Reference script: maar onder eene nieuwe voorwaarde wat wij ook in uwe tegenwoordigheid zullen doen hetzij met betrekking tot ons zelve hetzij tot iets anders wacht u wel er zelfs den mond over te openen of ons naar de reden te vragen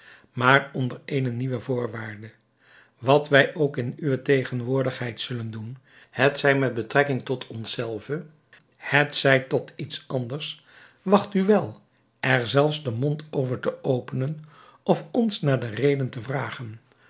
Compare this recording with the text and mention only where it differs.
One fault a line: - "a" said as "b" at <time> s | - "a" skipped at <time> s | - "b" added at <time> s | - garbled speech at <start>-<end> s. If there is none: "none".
none